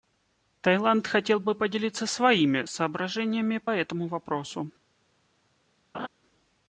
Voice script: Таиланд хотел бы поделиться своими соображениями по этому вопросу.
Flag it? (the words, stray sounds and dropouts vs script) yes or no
yes